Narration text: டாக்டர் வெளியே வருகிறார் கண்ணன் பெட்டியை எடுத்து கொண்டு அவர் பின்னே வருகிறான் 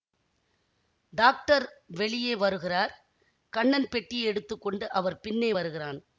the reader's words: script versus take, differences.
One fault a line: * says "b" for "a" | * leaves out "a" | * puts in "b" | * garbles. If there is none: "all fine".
all fine